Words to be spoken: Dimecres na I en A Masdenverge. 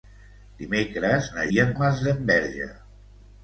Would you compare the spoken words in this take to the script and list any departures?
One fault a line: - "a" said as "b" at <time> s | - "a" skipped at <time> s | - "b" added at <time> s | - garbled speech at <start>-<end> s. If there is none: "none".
none